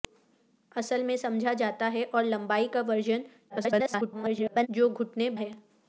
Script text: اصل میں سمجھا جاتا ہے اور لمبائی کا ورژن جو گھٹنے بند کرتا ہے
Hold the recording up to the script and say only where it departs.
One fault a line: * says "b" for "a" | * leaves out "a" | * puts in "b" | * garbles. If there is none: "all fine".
* garbles
* leaves out "بند کرتا"